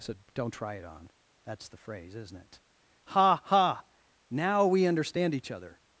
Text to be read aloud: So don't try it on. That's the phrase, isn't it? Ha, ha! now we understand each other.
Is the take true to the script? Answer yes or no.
yes